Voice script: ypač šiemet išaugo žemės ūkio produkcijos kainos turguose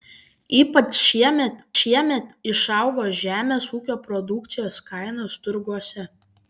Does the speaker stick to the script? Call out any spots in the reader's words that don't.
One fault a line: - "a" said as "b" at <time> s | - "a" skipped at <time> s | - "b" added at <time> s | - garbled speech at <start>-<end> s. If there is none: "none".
- "šiemet" added at 1.8 s